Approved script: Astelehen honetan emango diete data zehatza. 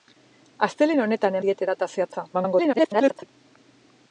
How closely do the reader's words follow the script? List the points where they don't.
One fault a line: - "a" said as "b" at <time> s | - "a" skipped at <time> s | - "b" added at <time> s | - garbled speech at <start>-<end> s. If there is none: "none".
- "emango" skipped at 1.4 s
- garbled speech at 2.3-3.3 s